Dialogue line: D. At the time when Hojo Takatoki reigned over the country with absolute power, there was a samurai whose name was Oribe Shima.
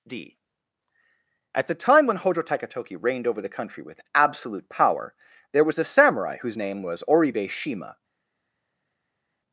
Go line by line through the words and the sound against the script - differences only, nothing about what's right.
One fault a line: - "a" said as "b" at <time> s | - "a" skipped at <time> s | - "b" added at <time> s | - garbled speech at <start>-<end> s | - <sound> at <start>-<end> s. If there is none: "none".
none